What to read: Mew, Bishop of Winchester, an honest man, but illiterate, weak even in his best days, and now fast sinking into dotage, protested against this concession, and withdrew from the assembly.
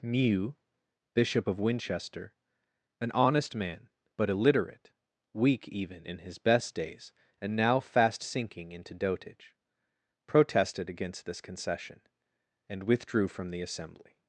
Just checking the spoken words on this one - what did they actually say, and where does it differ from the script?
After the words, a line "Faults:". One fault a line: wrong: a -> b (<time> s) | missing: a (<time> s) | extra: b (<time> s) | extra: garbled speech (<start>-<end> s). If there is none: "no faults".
Mew, Bishop of Winchester, an honest man, but illiterate, weak even in his best days, and now fast sinking into dotage, protested against this concession, and withdrew from the assembly.
Faults:
no faults